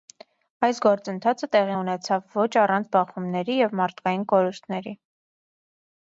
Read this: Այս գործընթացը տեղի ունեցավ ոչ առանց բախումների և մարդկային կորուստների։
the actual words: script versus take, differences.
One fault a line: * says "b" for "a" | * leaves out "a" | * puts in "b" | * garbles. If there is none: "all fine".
all fine